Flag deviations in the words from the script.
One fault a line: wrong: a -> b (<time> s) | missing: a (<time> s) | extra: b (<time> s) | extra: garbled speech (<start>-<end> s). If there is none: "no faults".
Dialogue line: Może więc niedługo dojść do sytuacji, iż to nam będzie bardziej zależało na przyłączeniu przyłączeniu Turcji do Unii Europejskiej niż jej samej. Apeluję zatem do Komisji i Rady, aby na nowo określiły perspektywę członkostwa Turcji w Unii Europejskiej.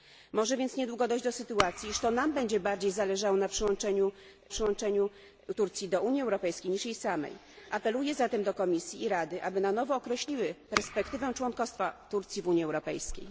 no faults